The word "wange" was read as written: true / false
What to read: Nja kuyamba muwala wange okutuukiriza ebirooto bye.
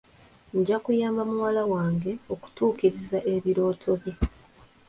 true